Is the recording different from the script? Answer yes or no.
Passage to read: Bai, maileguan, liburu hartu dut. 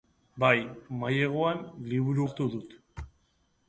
no